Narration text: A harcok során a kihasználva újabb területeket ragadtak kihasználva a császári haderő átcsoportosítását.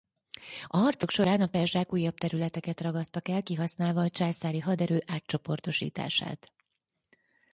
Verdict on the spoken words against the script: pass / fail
fail